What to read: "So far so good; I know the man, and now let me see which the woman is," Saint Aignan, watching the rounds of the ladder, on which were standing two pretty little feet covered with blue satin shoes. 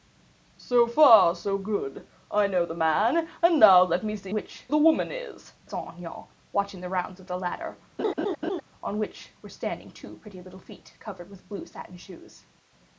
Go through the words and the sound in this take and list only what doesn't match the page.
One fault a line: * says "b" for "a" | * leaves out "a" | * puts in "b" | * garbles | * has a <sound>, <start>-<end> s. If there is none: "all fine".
* has a laugh, 8.0-8.6 s